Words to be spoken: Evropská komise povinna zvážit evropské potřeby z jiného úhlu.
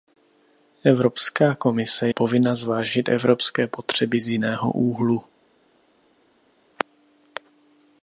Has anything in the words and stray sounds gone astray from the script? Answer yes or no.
no